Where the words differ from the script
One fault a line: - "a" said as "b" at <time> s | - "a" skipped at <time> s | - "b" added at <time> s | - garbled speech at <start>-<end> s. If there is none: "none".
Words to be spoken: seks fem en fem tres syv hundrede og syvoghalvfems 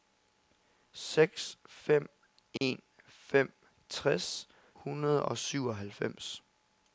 - "syv" skipped at 4.5 s